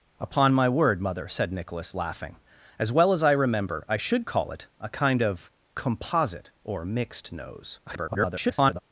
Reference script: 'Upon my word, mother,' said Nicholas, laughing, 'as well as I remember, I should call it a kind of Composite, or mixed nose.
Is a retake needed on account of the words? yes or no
yes